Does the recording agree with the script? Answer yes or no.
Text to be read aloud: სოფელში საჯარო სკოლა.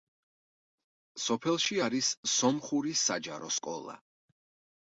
no